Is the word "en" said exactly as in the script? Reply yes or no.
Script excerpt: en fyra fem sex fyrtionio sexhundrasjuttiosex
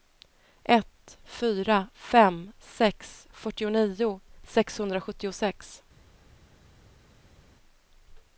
no